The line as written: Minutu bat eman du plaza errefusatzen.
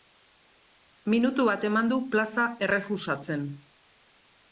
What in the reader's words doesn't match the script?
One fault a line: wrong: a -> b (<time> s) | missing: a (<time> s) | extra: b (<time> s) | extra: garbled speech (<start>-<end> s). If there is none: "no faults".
no faults